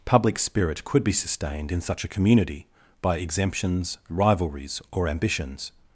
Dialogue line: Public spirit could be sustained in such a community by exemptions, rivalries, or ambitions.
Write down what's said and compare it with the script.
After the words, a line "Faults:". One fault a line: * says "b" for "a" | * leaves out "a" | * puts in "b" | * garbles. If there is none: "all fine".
Public spirit could be sustained in such a community by exemptions, rivalries, or ambitions.
Faults:
all fine